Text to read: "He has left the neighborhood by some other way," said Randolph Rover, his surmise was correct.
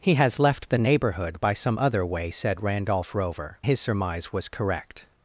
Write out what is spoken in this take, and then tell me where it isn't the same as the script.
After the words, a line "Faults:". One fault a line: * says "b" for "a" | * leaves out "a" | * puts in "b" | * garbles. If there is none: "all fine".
"He has left the neighborhood by some other way," said Randolph Rover, his surmise was correct.
Faults:
all fine